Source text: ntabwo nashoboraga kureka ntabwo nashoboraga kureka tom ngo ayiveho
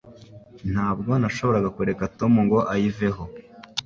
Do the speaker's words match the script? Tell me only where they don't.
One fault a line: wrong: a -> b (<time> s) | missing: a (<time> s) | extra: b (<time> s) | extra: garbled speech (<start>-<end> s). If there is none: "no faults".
missing: ntabwo nashoboraga kureka (2.0 s)